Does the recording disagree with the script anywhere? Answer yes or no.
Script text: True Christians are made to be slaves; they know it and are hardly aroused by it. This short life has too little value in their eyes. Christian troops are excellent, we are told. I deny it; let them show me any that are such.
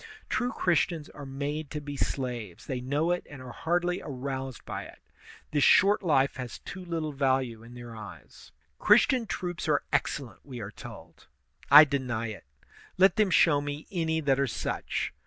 no